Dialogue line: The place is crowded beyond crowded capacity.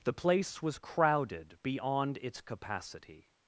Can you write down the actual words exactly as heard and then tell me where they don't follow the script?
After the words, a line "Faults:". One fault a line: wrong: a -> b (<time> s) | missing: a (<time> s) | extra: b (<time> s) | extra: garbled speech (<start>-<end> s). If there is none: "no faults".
The place was crowded beyond its capacity.
Faults:
wrong: is -> was (0.6 s)
wrong: crowded -> its (2.2 s)